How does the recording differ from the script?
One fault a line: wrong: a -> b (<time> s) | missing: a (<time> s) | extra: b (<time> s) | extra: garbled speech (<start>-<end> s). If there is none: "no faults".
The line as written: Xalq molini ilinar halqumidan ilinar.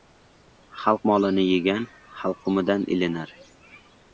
wrong: ilinar -> yegan (1.5 s)